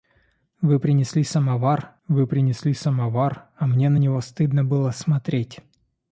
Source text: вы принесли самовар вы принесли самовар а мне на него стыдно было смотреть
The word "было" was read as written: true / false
true